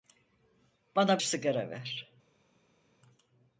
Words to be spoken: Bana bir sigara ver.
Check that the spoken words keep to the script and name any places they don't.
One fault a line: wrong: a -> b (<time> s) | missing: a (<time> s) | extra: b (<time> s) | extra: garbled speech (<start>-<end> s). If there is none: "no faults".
missing: bir (1.2 s)